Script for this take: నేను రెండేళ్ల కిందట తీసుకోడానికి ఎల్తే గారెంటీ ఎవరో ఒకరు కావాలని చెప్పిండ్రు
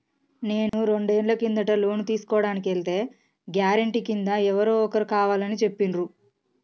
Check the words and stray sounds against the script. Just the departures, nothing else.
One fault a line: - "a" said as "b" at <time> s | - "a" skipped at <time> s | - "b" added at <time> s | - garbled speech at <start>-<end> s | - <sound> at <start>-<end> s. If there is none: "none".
- dropout at 0.7-0.7 s
- "లోను" added at 1.8 s
- "కింద" added at 4.0 s